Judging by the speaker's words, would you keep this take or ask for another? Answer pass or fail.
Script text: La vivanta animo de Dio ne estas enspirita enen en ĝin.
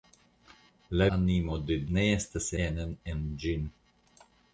fail